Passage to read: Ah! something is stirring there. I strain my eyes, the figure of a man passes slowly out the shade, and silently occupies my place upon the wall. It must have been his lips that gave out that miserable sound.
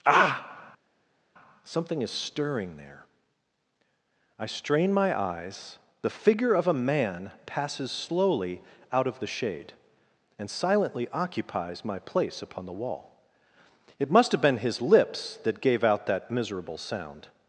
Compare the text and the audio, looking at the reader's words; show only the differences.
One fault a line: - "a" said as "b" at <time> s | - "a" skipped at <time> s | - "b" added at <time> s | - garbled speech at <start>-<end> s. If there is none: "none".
- "of" added at 9.1 s